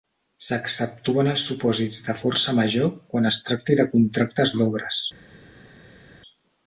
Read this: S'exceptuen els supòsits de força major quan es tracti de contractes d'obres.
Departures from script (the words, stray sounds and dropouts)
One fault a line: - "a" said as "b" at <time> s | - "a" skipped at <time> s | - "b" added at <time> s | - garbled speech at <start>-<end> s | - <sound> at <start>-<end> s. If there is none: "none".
none